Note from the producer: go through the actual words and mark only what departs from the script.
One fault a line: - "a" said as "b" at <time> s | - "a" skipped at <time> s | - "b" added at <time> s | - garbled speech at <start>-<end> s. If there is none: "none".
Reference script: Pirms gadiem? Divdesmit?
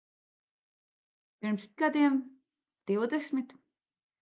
none